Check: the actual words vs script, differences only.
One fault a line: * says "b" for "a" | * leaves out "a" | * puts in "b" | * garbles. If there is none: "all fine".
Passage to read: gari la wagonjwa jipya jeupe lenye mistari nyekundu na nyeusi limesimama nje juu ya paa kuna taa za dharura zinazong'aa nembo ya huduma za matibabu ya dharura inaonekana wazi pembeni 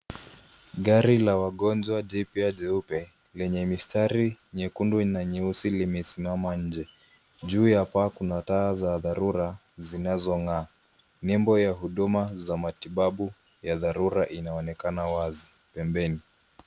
all fine